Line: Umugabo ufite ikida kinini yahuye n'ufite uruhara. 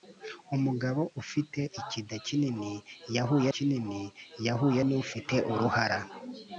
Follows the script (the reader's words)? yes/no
no